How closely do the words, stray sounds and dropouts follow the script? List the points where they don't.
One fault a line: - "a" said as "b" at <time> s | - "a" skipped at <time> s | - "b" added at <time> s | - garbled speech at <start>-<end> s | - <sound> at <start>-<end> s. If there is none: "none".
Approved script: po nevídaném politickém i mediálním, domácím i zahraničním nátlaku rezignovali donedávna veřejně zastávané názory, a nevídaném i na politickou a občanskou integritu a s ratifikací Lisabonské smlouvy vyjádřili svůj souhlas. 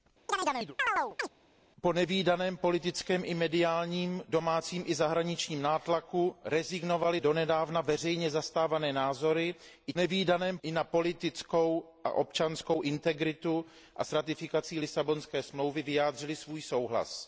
- chirp at 0.3-1.3 s